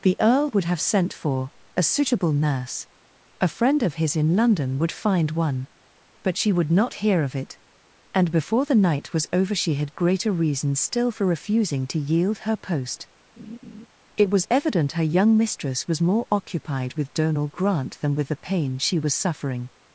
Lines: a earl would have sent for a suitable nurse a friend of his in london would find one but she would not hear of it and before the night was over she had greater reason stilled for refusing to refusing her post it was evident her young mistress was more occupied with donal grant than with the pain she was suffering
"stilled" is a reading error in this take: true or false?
true